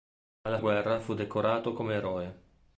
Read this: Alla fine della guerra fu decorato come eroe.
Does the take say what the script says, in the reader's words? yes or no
no